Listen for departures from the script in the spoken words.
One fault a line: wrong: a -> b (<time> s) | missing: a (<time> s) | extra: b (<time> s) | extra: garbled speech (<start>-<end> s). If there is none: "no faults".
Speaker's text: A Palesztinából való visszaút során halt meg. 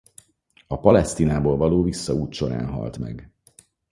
no faults